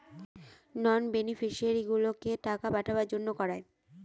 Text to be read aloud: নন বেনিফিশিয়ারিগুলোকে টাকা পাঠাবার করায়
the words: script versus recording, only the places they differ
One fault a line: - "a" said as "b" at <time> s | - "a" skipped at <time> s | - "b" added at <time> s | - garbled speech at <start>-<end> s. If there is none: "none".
- "জন্য" added at 3.1 s